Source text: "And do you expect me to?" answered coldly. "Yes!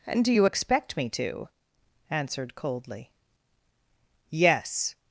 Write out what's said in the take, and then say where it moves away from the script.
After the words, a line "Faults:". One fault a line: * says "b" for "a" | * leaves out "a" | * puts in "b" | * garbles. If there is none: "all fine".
"And do you expect me to?" answered coldly. "Yes!
Faults:
all fine